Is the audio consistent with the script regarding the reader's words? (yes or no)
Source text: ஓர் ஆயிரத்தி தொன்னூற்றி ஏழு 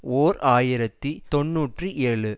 yes